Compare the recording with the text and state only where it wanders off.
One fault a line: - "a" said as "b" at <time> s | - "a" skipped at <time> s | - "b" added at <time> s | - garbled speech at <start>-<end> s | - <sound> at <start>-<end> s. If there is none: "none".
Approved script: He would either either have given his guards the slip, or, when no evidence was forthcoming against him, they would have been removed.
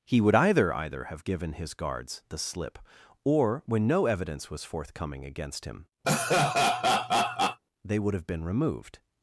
- laugh at 6.0-7.6 s